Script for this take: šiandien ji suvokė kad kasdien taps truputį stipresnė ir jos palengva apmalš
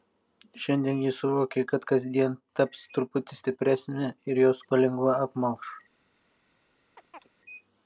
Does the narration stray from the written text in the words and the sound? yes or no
yes